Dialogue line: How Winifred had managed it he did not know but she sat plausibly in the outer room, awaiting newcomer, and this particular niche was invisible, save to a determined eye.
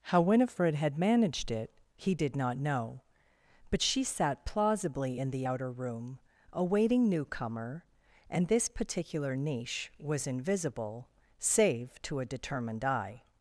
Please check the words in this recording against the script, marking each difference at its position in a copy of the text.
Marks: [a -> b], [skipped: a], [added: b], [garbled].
How Winifred had managed it he did not know but she sat plausibly in the outer room, awaiting newcomer, and this particular niche was invisible, save to a determined eye.